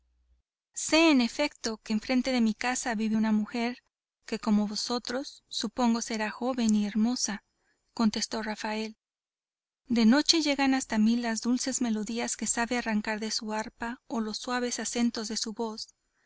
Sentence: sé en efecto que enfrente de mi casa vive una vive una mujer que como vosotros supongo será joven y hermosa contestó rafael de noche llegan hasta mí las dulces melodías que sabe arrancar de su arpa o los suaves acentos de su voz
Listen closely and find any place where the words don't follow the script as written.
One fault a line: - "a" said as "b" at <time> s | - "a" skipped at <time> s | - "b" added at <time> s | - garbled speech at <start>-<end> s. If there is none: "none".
- "vive una" skipped at 3.3 s